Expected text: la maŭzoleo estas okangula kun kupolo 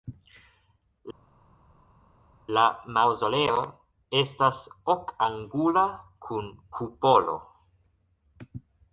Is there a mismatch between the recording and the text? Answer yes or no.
no